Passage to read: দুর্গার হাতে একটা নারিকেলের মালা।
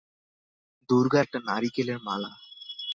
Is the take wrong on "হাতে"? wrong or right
wrong